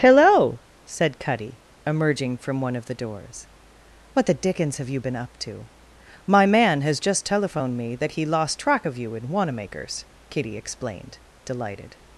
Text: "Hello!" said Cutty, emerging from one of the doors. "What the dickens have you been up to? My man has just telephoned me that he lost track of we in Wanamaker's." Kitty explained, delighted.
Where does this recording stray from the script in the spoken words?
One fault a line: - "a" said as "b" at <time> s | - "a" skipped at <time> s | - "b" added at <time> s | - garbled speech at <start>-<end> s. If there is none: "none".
- "we" said as "you" at 9.0 s